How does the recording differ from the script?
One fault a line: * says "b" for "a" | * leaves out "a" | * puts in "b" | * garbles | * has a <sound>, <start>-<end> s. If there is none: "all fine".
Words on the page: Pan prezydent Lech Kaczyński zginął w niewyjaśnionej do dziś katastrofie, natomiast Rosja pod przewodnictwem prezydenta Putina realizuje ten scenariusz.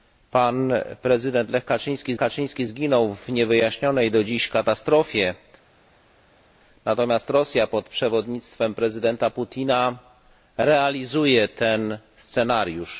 * puts in "Kaczyński"